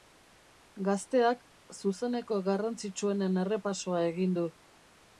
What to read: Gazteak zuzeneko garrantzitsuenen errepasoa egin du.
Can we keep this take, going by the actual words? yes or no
yes